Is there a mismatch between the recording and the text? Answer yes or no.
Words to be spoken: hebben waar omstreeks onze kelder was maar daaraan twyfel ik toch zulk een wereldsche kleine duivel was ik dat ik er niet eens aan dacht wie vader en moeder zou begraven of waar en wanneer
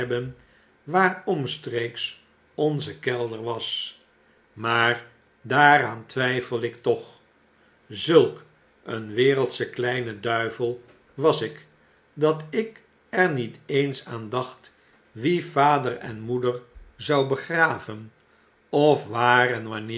no